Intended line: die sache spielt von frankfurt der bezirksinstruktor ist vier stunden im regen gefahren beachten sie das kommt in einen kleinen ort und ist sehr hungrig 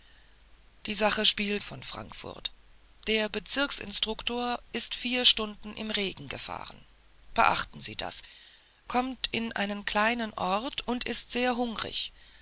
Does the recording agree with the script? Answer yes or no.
yes